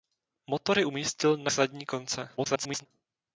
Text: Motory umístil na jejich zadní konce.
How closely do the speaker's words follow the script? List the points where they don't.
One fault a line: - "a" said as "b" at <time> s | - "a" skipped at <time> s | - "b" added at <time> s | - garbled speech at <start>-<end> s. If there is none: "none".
- "jejich" skipped at 1.5 s
- garbled speech at 2.4-2.9 s